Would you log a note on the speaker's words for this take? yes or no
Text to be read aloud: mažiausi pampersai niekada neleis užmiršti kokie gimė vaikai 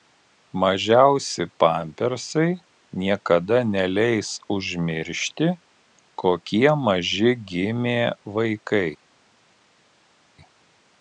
yes